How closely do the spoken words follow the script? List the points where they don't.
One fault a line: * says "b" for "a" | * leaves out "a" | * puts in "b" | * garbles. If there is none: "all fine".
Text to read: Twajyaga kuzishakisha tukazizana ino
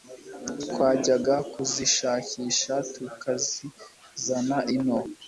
all fine